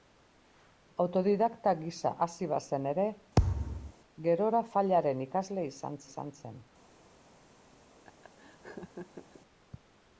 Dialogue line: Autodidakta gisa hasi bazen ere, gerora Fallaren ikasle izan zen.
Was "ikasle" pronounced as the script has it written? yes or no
yes